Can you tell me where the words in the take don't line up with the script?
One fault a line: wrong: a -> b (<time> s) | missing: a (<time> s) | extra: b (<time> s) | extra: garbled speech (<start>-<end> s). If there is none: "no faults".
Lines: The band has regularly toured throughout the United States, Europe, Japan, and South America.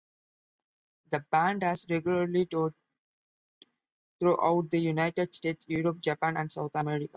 no faults